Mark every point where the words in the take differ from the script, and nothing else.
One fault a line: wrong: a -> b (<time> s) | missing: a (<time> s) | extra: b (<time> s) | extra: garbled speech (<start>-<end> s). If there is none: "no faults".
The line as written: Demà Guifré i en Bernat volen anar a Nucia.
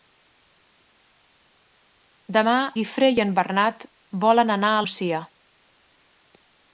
no faults